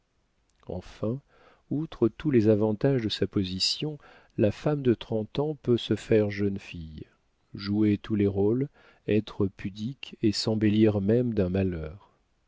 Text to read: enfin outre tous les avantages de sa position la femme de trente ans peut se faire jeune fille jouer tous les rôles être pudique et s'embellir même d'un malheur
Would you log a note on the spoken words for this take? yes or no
no